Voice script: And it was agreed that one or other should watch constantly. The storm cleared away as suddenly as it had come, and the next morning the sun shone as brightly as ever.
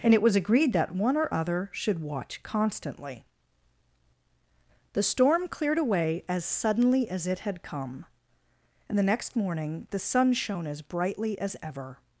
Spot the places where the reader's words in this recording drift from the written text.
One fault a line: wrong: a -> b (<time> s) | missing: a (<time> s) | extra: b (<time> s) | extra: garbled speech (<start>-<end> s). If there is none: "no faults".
no faults